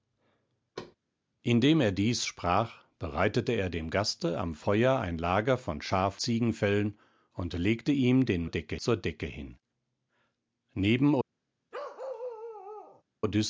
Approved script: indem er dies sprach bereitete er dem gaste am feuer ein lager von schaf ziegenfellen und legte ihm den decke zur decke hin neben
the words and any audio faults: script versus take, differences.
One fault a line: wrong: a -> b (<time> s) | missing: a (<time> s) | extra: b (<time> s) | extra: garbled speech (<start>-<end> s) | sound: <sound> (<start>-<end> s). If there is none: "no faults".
sound: thud (0.8-1.0 s)
sound: bark (11.7-13.0 s)